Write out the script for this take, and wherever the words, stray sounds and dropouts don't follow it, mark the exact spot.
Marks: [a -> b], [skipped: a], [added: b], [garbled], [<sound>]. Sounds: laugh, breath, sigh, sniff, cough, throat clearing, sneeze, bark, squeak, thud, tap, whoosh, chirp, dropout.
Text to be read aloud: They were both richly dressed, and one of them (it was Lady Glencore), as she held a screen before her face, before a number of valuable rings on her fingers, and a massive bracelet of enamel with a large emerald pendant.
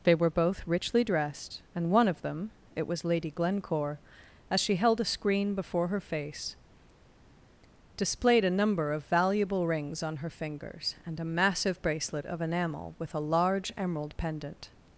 They were both richly dressed, and one of them (it was Lady Glencore), as she held a screen before her face, [before -> displayed] a number of valuable rings on her fingers, and a massive bracelet of enamel with a large emerald pendant.